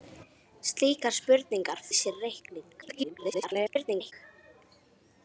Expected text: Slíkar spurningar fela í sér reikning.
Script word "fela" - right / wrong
wrong